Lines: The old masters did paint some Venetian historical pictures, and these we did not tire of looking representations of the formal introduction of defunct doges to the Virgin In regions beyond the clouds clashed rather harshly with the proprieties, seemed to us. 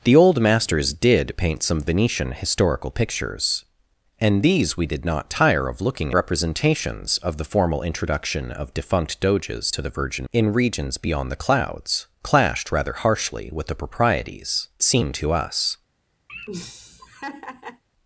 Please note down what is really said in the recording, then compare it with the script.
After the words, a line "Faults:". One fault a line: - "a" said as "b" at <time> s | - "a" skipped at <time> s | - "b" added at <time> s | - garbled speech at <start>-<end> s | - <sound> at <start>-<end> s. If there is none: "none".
The old masters did paint some Venetian historical pictures, and these we did not tire of looking representations of the formal introduction of defunct doges to the Virgin In regions beyond the clouds clashed rather harshly with the proprieties, seemed to us.
Faults:
- laugh at 16.3-17.8 s